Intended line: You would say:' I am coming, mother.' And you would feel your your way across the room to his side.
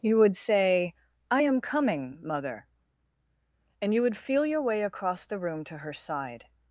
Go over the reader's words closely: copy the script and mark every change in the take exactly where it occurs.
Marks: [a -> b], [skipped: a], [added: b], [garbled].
You would say:' I am coming, mother.' And you would feel your [skipped: your] way across the room to [his -> her] side.